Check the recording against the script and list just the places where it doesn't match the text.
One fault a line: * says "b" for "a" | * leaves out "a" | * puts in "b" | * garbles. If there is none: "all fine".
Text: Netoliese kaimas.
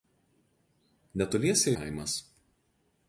all fine